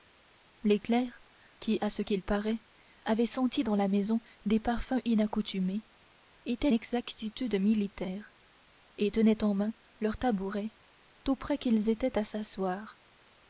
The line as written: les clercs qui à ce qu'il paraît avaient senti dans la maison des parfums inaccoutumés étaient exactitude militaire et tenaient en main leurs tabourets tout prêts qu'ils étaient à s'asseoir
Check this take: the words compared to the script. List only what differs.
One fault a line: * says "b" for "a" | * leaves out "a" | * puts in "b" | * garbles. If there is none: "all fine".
all fine